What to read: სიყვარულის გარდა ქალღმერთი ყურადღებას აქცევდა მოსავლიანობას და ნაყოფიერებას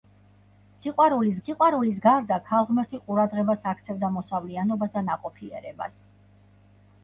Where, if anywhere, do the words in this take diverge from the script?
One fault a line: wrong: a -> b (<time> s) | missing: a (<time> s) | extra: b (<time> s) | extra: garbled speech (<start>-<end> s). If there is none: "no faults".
extra: სიყვარულის (1.5 s)